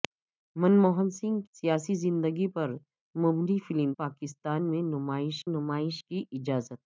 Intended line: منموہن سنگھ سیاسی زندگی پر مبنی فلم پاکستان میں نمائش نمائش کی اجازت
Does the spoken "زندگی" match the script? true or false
true